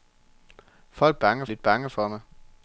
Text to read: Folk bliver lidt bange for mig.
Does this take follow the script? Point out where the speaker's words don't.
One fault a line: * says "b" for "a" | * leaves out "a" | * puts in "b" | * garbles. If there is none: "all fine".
* says "bange" for "bliver"